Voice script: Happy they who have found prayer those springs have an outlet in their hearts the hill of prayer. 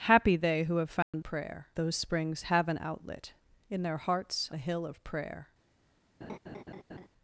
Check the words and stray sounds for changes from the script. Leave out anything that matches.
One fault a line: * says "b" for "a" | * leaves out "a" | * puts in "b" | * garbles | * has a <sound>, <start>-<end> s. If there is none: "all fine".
* has a dropout, 1.0-1.1 s
* has a laugh, 6.2-7.1 s